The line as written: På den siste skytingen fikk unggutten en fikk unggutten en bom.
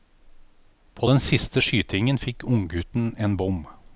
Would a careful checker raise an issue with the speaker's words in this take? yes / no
yes